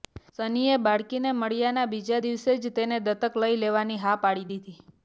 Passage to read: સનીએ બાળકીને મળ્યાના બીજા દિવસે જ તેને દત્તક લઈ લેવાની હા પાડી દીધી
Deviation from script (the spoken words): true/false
false